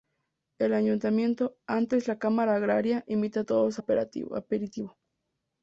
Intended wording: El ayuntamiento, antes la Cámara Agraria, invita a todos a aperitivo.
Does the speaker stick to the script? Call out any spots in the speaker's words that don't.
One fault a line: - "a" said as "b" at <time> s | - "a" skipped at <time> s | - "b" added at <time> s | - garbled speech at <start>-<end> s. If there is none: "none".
none